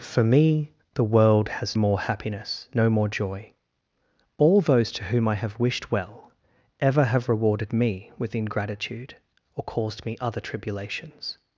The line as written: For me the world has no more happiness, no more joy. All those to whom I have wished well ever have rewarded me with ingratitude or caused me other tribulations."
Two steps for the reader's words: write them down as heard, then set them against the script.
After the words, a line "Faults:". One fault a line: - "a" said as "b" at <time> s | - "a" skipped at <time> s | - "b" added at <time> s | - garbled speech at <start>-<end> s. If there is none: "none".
For me the world has more happiness, no more joy. All those to whom I have wished well ever have rewarded me with ingratitude or caused me other tribulations."
Faults:
- "no" skipped at 1.8 s